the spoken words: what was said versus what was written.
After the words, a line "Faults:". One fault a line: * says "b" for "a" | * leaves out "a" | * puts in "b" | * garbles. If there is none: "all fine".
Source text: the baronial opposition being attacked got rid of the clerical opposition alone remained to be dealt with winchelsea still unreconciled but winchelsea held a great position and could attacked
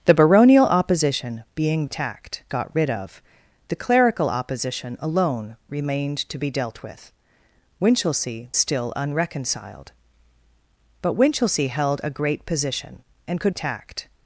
the baronial opposition being attacked got rid of the clerical opposition alone remained to be dealt with winchelsea still unreconciled but winchelsea held a great position and could attacked
Faults:
all fine